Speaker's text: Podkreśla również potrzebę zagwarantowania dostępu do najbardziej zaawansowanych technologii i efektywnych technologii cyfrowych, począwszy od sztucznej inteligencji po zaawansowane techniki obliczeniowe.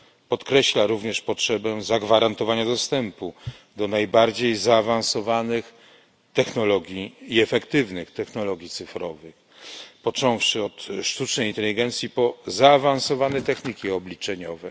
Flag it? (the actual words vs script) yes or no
no